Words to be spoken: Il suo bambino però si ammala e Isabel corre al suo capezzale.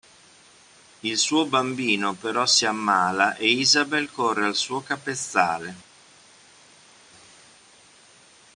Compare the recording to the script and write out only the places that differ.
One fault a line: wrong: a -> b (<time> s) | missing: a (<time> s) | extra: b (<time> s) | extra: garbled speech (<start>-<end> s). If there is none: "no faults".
no faults